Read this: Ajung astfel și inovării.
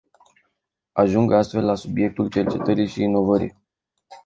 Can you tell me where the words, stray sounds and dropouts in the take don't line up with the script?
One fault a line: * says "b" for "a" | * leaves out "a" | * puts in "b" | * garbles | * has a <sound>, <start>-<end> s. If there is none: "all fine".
* puts in "la subiectul cercetării"